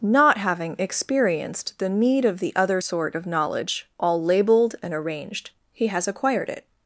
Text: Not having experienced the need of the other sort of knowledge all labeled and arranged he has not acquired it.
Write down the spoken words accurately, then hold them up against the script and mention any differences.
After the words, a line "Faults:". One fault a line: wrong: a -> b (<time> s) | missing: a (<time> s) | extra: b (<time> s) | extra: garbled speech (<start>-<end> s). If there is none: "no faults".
Not having experienced the need of the other sort of knowledge all labeled and arranged he has acquired it.
Faults:
missing: not (6.1 s)